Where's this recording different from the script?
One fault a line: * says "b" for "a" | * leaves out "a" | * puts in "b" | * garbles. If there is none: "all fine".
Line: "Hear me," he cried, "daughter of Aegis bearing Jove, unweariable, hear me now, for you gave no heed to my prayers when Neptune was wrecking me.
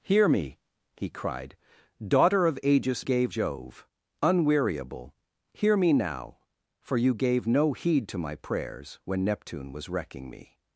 * says "gave" for "bearing"